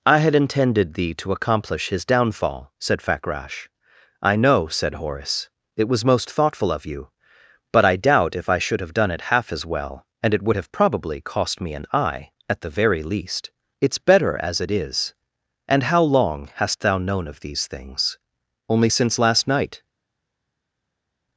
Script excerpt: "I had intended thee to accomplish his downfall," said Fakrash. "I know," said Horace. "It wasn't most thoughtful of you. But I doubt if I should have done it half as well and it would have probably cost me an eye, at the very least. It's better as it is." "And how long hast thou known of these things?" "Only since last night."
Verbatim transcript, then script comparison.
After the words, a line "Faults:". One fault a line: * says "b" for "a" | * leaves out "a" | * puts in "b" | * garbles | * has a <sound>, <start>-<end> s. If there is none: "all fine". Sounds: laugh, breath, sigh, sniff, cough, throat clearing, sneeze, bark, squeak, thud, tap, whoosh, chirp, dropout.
"I had intended thee to accomplish his downfall," said Fakrash. "I know," said Horace. "It was most thoughtful of you. But I doubt if I should have done it half as well and it would have probably cost me an eye, at the very least. It's better as it is." "And how long hast thou known of these things?" "Only since last night."
Faults:
* says "was" for "wasn't"